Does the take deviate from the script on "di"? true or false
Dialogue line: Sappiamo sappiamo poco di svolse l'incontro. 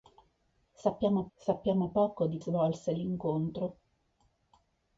false